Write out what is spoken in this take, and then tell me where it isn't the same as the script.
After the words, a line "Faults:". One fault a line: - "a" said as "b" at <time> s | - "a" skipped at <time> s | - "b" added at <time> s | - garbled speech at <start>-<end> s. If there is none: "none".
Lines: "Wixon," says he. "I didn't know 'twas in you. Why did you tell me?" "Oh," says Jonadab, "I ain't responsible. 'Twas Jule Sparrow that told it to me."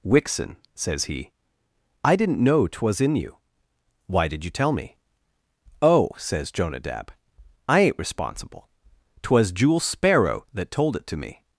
"Wixon," says he. "I didn't know 'twas in you. Why did you tell me?" "Oh," says Jonadab, "I ain't responsible. 'Twas Jule Sparrow that told it to me."
Faults:
none